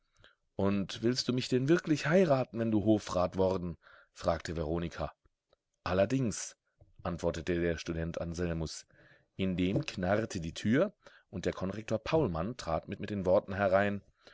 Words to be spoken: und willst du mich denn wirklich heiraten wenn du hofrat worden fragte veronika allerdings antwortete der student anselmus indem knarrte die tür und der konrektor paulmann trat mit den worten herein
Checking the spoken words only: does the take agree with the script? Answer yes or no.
no